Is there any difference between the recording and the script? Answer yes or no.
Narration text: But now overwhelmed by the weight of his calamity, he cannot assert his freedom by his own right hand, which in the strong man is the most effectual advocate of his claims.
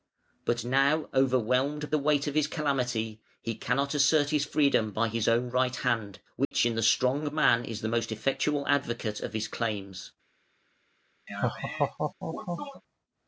yes